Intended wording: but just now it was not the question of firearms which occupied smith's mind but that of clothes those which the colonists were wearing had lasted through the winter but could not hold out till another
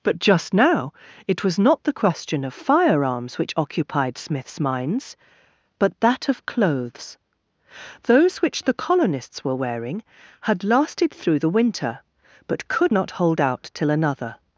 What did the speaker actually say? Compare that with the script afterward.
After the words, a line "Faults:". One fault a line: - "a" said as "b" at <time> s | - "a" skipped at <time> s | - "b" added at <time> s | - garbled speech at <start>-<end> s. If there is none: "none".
but just now it was not the question of firearms which occupied smith's minds but that of clothes those which the colonists were wearing had lasted through the winter but could not hold out till another
Faults:
- "mind" said as "minds" at 4.6 s